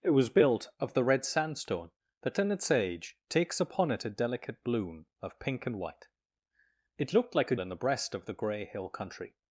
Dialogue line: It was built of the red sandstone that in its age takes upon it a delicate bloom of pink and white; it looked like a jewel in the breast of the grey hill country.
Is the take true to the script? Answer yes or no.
no